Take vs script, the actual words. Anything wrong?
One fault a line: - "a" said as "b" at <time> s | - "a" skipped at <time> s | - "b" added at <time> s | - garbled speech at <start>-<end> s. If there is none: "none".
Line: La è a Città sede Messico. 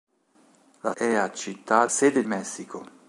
none